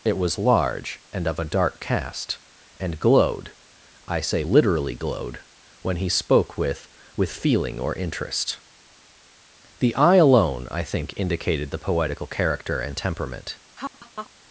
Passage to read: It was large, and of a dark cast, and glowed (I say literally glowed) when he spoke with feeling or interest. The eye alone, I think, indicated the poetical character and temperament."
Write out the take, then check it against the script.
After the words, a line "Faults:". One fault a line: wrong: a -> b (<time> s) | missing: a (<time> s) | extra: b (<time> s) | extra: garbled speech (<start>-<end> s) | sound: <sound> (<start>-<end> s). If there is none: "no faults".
It was large, and of a dark cast, and glowed (I say literally glowed) when he spoke with with feeling or interest. The eye alone, I think, indicated the poetical character and temperament."
Faults:
extra: with (7.1 s)
sound: laugh (13.8-14.3 s)